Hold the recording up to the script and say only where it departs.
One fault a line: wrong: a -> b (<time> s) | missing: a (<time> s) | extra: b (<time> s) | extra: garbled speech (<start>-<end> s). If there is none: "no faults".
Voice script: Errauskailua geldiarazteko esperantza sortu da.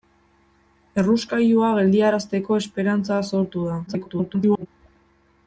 extra: garbled speech (3.9-4.7 s)